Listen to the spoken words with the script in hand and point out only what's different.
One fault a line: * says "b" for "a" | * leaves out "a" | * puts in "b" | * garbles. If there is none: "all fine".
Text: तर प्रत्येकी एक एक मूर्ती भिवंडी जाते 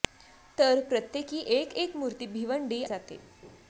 all fine